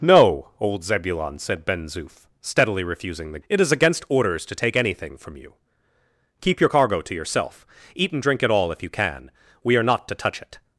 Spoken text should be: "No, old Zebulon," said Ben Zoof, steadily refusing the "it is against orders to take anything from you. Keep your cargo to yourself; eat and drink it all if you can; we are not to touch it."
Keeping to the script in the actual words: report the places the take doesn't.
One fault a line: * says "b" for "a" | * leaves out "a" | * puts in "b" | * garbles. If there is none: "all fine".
all fine